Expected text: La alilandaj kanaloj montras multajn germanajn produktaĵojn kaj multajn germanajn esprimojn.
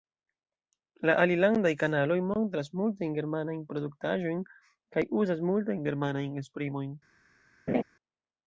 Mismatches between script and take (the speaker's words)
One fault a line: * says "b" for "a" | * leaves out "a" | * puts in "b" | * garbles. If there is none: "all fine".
* puts in "uzas"